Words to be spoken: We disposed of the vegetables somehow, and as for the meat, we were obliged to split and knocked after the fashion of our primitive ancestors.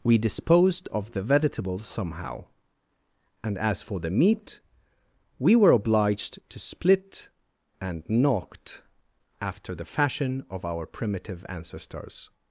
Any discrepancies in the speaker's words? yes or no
no